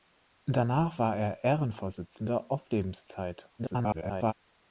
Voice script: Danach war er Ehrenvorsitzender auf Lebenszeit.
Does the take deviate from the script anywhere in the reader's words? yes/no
yes